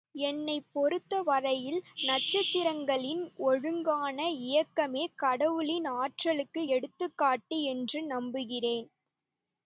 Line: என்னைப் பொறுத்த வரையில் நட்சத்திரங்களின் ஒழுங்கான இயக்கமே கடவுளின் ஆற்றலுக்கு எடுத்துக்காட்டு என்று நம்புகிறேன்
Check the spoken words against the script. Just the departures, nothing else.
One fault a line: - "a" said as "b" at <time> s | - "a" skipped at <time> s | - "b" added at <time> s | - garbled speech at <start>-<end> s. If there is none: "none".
none